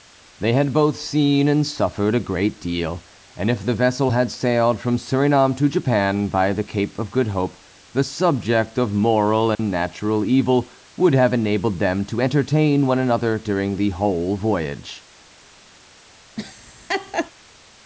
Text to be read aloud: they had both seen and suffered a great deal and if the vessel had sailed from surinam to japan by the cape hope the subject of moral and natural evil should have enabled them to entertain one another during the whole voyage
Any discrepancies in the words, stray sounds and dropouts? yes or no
yes